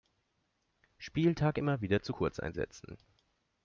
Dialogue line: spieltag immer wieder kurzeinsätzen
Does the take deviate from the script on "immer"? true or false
false